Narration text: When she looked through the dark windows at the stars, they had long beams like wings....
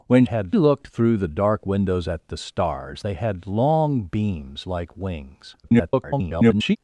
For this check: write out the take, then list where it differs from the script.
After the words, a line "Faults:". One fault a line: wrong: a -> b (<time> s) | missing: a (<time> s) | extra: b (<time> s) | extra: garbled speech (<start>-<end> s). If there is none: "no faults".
When had looked through the dark windows at the stars, they had long beams like wings.... [garbled]
Faults:
wrong: she -> had (0.2 s)
extra: garbled speech (5.6-6.8 s)